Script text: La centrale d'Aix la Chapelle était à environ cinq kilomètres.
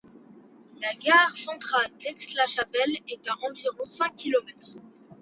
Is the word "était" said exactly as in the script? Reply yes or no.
no